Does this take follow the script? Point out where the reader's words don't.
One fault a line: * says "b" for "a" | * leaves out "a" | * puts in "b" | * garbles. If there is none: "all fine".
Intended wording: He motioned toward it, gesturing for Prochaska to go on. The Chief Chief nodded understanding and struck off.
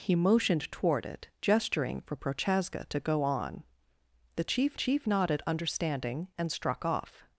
all fine